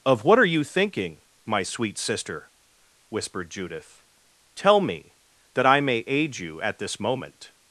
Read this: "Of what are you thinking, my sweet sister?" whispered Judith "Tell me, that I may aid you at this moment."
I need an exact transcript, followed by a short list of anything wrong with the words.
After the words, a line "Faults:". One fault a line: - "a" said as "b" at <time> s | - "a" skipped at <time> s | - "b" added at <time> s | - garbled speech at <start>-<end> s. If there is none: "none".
"Of what are you thinking, my sweet sister?" whispered Judith "Tell me, that I may aid you at this moment."
Faults:
none